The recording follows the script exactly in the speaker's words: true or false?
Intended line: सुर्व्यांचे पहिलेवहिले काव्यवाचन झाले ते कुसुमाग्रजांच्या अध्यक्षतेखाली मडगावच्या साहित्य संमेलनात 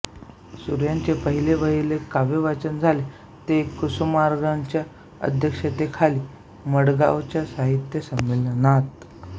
true